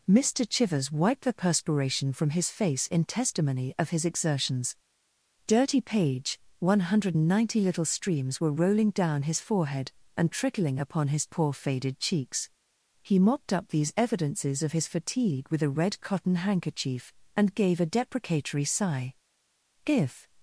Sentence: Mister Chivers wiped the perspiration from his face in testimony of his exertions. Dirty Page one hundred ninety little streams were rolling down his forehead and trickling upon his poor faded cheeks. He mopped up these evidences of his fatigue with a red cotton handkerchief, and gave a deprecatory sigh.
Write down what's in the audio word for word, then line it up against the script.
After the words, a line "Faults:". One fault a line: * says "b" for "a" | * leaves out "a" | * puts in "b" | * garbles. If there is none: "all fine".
Mister Chivers wiped the perspiration from his face in testimony of his exertions. Dirty Page one hundred ninety little streams were rolling down his forehead and trickling upon his poor faded cheeks. He mopped up these evidences of his fatigue with a red cotton handkerchief, and gave a deprecatory sigh. "If
Faults:
* puts in "If"